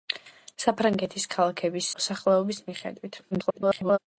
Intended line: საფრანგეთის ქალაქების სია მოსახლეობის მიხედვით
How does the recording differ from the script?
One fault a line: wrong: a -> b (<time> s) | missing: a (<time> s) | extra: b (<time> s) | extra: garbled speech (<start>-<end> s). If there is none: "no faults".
missing: სია (1.9 s)
extra: garbled speech (3.3-4.0 s)